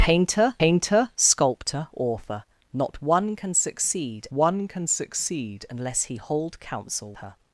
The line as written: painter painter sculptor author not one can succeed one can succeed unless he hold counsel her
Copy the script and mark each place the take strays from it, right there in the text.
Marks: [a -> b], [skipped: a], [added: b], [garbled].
painter painter sculptor author not one can succeed one can succeed unless he hold counsel her